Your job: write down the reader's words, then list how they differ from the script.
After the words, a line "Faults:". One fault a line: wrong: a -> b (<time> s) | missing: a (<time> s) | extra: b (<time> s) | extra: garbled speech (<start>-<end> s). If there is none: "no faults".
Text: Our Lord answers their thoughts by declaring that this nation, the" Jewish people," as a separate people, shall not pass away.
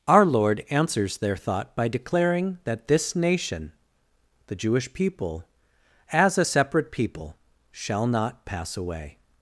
Our Lord answers their thought by declaring that this nation, the" Jewish people," as a separate people, shall not pass away.
Faults:
wrong: thoughts -> thought (1.4 s)